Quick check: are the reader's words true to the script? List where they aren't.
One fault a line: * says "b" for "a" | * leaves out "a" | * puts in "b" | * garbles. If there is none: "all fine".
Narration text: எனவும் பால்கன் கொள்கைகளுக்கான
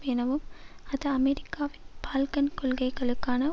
* puts in "அது அமெரிக்காவின்"